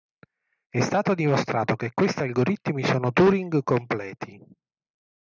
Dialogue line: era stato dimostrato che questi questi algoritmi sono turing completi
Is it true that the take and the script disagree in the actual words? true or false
true